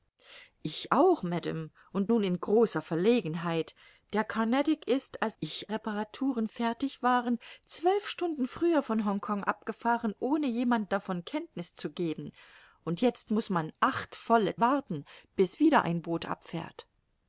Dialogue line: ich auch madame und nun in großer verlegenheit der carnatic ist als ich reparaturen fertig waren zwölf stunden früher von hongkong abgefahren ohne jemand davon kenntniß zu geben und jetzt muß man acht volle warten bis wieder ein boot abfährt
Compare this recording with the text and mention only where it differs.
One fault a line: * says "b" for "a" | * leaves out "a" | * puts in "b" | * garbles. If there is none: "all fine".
all fine